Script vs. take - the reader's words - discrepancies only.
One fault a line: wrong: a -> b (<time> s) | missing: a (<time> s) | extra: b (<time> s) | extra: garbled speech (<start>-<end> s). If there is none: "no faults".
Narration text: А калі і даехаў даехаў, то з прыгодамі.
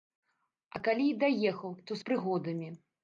missing: даехаў (1.8 s)